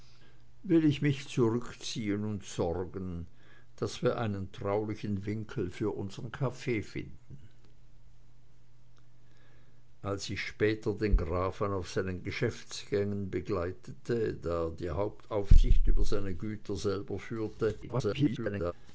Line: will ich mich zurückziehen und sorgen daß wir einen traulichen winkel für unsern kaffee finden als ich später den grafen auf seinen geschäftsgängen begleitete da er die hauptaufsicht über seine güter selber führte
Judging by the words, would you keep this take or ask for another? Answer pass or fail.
fail